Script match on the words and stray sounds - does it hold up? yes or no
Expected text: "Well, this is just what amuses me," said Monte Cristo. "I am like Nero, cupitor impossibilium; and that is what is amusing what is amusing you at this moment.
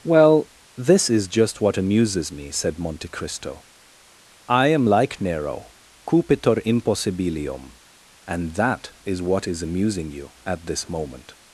no